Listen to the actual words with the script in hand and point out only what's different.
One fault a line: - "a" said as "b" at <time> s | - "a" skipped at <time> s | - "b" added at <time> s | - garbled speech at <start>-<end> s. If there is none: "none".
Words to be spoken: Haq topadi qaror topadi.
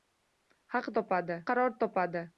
none